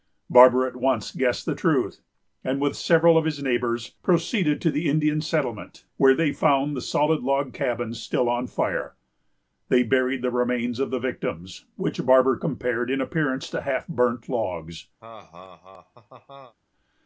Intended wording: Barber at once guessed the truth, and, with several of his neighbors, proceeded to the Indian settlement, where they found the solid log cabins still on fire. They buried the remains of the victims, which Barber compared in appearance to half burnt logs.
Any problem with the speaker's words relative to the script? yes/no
no